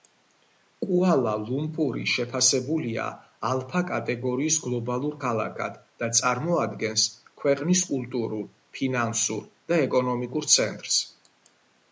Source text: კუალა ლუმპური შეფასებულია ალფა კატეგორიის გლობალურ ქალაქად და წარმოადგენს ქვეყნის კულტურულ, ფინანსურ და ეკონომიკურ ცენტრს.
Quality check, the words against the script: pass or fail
pass